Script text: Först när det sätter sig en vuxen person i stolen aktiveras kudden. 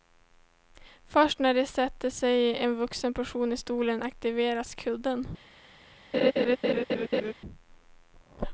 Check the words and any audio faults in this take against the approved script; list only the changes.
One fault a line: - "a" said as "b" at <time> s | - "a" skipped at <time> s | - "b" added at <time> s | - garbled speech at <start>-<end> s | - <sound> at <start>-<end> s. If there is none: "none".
- laugh at 6.1-7.3 s